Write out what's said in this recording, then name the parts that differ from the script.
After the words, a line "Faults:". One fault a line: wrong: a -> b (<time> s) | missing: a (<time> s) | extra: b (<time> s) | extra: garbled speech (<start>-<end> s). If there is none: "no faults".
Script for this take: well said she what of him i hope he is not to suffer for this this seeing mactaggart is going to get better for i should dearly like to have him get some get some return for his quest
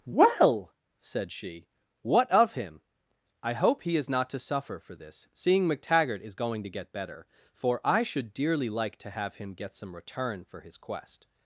well said she what of him i hope he is not to suffer for this seeing mactaggart is going to get better for i should dearly like to have him get some return for his quest
Faults:
missing: this (5.3 s)
missing: get some (9.9 s)